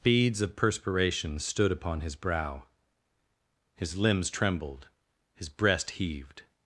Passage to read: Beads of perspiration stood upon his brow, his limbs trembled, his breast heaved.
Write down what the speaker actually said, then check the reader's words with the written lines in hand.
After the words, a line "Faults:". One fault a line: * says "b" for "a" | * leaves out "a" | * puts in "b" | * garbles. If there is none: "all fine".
Beads of perspiration stood upon his brow, his limbs trembled, his breast heaved.
Faults:
all fine